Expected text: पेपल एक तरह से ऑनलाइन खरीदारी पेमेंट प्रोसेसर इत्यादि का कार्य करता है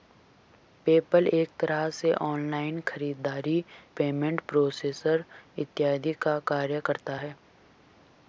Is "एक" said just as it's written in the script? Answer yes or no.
yes